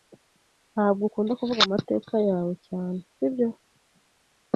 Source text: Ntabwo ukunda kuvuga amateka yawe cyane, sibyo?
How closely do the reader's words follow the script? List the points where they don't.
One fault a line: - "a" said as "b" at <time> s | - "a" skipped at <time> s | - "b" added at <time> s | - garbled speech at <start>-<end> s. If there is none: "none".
none